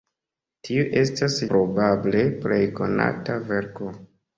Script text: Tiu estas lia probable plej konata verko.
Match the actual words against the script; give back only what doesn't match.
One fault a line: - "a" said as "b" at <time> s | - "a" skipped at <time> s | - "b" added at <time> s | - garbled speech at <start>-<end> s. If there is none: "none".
- "lia" skipped at 1.4 s